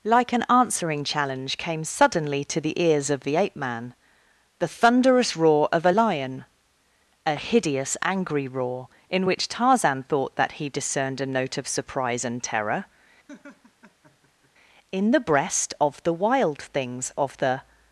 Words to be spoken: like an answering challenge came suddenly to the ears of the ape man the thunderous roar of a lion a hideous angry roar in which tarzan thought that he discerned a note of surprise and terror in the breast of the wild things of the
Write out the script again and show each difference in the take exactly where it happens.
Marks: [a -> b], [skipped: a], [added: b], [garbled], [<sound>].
like an answering challenge came suddenly to the ears of the ape man the thunderous roar of a lion a hideous angry roar in which tarzan thought that he discerned a note of surprise and terror [laugh] in the breast of the wild things of the